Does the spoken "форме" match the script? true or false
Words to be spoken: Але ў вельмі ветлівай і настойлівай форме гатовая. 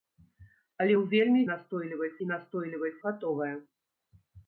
false